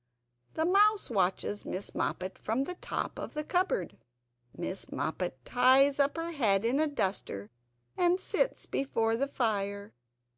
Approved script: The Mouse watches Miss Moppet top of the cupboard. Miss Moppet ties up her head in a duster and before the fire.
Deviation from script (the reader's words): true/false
true